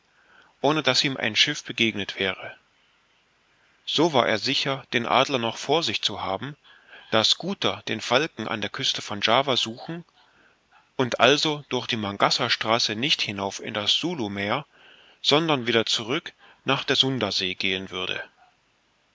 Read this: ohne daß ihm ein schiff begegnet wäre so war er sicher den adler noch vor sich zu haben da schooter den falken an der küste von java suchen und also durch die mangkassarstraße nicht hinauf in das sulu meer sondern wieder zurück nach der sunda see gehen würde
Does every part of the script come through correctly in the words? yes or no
yes